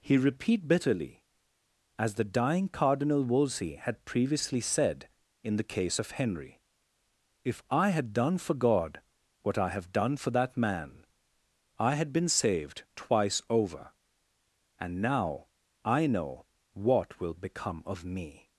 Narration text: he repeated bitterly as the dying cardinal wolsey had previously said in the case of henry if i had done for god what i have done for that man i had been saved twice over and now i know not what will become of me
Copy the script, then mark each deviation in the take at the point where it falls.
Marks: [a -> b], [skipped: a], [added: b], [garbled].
he [repeated -> repeat] bitterly as the dying cardinal wolsey had previously said in the case of henry if i had done for god what i have done for that man i had been saved twice over and now i know [skipped: not] what will become of me